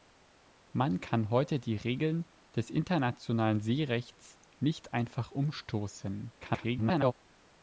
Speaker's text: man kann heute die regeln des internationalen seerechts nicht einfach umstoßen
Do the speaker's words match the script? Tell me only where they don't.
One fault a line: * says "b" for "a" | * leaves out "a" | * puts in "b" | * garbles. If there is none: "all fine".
* garbles